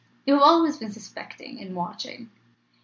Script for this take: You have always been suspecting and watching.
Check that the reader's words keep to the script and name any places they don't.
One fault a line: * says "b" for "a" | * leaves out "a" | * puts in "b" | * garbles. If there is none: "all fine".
all fine